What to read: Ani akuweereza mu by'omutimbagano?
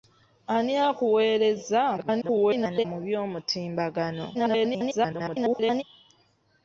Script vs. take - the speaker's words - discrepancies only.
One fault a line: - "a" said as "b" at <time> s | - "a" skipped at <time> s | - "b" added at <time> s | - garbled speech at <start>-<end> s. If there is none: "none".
- garbled speech at 2.0-2.8 s
- garbled speech at 4.3-5.8 s